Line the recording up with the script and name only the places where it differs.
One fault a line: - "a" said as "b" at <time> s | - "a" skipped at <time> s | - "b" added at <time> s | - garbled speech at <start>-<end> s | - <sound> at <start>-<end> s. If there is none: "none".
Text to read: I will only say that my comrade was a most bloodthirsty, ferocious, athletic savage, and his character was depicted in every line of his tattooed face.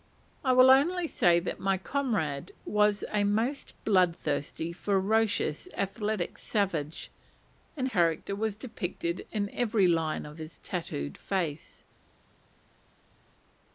- "his" skipped at 7.9 s